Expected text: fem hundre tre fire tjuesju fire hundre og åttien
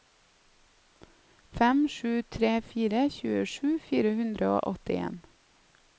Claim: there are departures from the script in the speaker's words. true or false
true